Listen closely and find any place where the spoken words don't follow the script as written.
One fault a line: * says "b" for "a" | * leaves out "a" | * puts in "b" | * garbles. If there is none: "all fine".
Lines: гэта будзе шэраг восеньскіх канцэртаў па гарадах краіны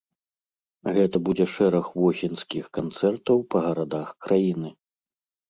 all fine